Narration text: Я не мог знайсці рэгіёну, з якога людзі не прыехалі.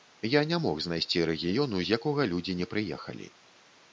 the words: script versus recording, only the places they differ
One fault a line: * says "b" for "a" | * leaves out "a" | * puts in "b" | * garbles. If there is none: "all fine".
all fine